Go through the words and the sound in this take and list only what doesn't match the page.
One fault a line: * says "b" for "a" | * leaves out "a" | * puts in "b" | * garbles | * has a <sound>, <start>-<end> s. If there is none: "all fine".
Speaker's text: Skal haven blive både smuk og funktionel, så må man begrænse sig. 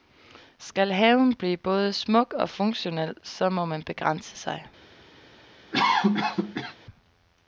* has a cough, 5.7-6.8 s